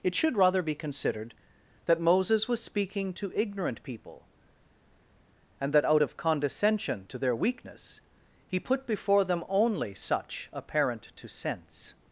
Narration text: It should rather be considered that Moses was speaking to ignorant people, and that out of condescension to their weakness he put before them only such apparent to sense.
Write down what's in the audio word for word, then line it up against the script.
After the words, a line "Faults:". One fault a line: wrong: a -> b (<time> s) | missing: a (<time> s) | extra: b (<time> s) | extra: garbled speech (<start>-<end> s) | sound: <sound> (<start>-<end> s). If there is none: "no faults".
It should rather be considered that Moses was speaking to ignorant people, and that out of condescension to their weakness he put before them only such apparent to sense.
Faults:
no faults